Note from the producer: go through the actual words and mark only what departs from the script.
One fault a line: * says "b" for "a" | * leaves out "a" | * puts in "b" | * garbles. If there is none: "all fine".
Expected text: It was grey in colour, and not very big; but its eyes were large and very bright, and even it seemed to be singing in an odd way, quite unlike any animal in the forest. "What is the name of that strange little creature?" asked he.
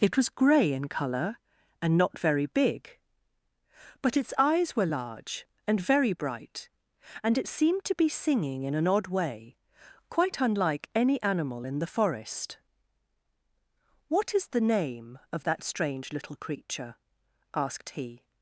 * leaves out "even"